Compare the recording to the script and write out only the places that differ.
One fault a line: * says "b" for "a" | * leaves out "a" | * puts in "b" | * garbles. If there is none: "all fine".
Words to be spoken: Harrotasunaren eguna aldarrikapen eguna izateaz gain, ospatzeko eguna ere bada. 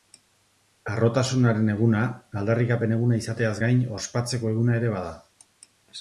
all fine